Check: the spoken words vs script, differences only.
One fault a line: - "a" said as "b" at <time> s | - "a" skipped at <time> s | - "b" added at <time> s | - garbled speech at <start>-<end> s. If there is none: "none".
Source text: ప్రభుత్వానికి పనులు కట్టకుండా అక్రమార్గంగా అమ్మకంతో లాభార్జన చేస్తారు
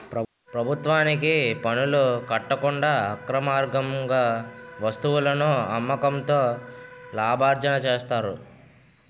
- "వస్తువులను" added at 4.8 s